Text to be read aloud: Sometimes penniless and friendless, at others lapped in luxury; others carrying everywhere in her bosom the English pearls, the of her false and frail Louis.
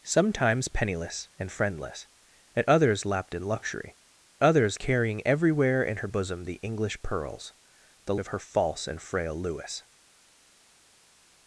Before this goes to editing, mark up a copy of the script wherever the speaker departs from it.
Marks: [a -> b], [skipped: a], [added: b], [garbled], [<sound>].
Sometimes penniless and friendless, at others lapped in luxury; others carrying everywhere in her bosom the English pearls, the of her false and frail Louis.